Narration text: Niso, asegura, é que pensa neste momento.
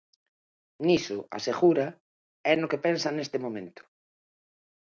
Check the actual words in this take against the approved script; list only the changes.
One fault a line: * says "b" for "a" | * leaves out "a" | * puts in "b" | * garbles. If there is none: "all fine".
* puts in "no"